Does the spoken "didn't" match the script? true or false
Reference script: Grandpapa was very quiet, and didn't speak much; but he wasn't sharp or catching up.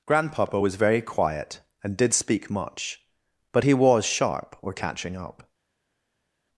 false